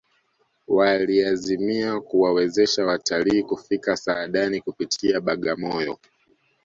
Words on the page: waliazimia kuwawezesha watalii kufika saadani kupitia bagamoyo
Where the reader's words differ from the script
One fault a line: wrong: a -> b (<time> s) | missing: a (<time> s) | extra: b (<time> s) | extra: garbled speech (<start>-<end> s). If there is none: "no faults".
no faults